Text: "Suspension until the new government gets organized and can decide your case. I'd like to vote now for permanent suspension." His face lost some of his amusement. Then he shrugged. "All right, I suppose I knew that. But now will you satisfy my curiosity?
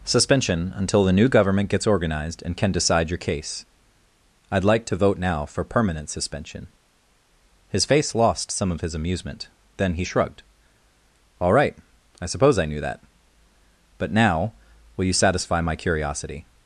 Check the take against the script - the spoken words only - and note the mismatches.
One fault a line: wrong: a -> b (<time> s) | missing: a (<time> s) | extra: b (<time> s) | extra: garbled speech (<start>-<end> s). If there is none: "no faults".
no faults